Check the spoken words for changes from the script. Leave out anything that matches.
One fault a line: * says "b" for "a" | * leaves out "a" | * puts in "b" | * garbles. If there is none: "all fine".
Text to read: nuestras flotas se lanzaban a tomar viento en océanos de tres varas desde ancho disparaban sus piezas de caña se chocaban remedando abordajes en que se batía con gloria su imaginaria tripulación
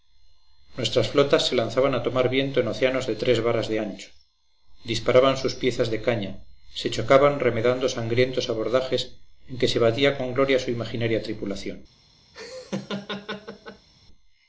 * says "de" for "desde"
* puts in "sangrientos"